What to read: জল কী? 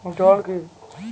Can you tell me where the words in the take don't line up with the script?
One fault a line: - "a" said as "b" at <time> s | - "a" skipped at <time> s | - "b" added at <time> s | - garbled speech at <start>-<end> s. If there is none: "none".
none